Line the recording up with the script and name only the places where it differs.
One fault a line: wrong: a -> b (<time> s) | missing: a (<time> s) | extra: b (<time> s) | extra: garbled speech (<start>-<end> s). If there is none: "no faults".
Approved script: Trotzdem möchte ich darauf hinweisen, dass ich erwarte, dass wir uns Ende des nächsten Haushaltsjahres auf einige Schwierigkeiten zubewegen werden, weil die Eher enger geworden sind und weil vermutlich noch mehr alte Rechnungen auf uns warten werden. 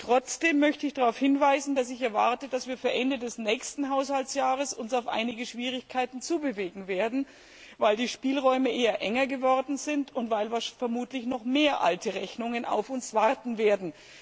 extra: Spielräume (8.1 s)